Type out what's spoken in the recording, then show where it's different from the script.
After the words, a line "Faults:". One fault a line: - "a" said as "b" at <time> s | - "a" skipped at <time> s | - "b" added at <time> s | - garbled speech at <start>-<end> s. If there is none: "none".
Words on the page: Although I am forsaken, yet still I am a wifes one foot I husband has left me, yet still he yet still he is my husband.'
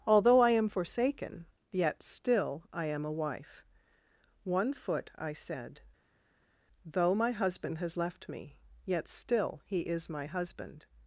Although I am forsaken, yet still I am a wife one foot I said; though my husband has left me, yet still he is my husband.'
Faults:
- "wifes" said as "wife" at 3.1 s
- "said though my" added at 5.3 s
- "yet still he" skipped at 9.8 s